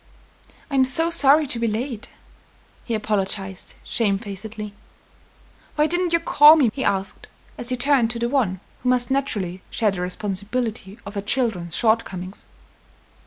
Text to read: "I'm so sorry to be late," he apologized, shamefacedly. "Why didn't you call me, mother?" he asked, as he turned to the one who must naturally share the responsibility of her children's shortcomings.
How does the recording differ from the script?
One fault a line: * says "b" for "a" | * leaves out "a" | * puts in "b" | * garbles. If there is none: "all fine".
* leaves out "mother"